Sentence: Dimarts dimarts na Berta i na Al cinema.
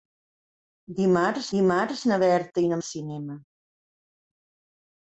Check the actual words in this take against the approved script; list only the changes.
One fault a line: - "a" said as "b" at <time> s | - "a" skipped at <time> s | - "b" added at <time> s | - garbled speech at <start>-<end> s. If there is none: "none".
none